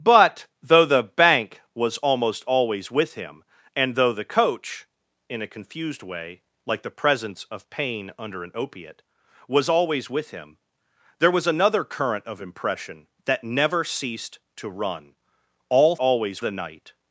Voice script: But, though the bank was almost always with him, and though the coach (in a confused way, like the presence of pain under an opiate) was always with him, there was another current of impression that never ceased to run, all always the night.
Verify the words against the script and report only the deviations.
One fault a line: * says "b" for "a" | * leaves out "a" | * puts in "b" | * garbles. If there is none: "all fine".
all fine